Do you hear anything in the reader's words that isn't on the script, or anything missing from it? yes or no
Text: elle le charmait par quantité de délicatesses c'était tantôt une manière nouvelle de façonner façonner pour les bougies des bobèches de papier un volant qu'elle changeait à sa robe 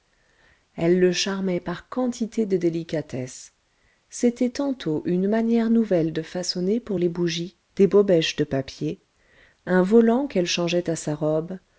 yes